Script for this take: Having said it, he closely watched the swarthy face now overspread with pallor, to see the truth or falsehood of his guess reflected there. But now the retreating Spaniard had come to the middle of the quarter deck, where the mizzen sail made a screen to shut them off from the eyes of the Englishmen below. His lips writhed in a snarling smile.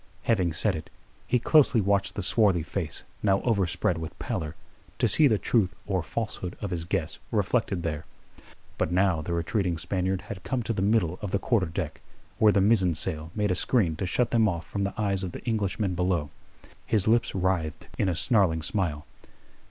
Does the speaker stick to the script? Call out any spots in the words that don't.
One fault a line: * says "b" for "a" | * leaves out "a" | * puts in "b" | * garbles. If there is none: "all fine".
all fine